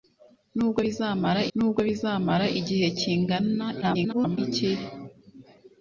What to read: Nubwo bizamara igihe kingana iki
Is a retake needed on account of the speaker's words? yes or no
yes